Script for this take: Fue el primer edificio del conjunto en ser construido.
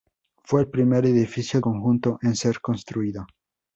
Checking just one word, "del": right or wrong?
wrong